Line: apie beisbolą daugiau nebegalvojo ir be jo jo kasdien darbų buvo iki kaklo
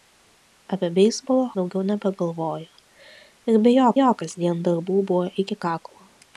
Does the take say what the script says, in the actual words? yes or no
yes